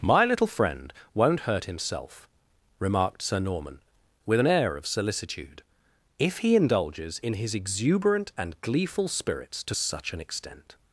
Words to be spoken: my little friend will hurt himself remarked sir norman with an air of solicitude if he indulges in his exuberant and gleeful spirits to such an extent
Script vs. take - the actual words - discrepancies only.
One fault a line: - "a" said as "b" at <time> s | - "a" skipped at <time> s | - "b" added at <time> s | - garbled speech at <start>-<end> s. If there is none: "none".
- "will" said as "won't" at 1.1 s